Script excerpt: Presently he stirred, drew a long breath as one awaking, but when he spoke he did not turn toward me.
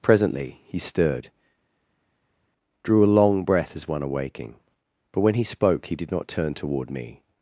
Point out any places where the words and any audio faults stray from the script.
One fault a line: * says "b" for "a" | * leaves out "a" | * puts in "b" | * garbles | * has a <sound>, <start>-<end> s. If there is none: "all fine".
all fine